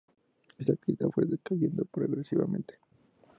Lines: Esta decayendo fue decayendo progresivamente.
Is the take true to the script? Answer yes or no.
no